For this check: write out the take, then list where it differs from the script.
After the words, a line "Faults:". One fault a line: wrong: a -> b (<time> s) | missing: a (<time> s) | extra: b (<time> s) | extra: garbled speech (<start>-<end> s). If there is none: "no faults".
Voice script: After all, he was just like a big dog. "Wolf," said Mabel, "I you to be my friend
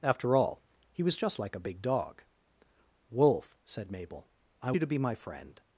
After all, he was just like a big dog. "Wolf," said Mabel, "I you to be my friend
Faults:
no faults